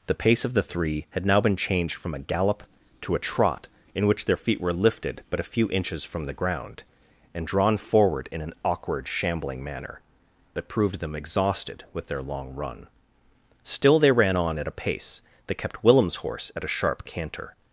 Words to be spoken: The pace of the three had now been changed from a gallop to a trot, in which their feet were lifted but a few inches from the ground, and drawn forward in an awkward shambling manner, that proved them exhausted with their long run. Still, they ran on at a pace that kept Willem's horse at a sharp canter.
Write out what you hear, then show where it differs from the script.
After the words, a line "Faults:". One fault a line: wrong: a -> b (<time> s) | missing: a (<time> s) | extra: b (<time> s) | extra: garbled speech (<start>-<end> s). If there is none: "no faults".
The pace of the three had now been changed from a gallop to a trot, in which their feet were lifted but a few inches from the ground, and drawn forward in an awkward shambling manner, that proved them exhausted with their long run. Still, they ran on at a pace that kept Willem's horse at a sharp canter.
Faults:
no faults